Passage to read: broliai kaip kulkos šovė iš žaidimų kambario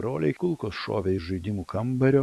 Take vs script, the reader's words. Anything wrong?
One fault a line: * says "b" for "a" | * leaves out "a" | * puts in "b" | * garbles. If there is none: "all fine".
* leaves out "kaip"